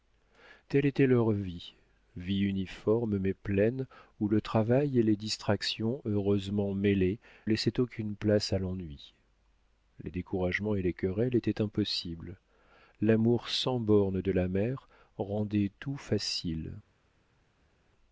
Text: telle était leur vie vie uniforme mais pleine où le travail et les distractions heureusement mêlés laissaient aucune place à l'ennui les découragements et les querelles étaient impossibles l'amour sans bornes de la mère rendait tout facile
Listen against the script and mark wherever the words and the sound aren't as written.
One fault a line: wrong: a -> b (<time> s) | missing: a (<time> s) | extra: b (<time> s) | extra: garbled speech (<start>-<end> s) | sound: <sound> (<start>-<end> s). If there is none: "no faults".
no faults